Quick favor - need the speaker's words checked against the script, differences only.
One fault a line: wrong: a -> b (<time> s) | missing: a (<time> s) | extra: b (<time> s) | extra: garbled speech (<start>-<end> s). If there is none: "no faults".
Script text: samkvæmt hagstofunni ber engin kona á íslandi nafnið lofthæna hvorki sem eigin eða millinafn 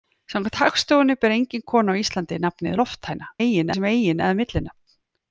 wrong: hvorki -> eigin (3.4 s)